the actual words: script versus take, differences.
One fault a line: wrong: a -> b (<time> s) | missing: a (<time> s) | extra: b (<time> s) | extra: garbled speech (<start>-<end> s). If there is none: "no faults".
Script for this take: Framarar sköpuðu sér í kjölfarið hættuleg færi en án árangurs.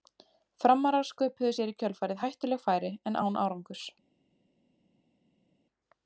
no faults